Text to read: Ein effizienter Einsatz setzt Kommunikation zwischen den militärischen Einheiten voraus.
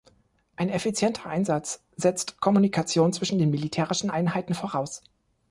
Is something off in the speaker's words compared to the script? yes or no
no